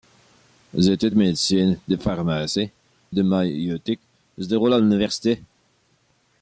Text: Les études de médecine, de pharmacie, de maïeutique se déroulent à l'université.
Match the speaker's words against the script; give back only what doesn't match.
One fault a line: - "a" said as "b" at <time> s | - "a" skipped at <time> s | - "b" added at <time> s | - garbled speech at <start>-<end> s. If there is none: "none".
none